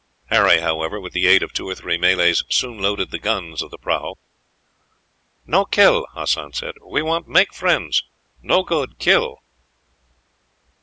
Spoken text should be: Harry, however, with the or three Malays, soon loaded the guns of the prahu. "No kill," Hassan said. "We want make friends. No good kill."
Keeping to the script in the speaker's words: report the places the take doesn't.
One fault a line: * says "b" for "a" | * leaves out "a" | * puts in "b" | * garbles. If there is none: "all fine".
* puts in "aid of two"